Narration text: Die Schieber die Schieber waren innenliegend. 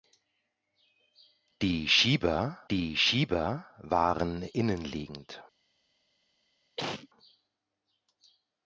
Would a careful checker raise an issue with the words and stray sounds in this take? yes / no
yes